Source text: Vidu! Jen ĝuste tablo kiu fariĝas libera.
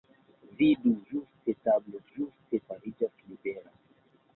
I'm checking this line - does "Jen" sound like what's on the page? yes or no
no